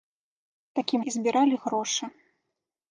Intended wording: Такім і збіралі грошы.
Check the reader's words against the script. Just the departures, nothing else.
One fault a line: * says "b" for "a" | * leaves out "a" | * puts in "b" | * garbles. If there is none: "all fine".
all fine